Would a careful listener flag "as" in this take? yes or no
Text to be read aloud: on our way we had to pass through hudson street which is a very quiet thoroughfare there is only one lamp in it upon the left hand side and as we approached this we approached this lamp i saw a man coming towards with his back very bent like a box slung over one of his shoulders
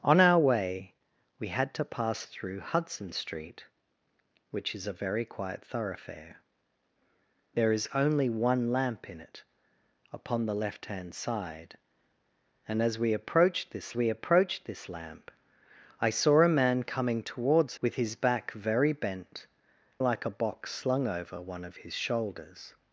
no